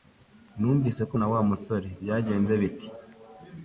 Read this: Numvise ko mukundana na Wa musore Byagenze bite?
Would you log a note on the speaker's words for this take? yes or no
yes